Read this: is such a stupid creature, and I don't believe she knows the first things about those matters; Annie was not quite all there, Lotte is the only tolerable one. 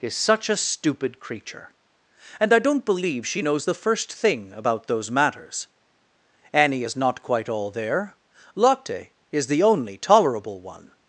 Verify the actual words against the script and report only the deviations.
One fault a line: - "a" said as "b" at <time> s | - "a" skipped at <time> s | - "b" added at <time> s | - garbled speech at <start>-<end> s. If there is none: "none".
- "things" said as "thing" at 4.1 s
- "was" said as "is" at 6.8 s